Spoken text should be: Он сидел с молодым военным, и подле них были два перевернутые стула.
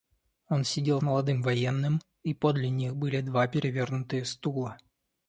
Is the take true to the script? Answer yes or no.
no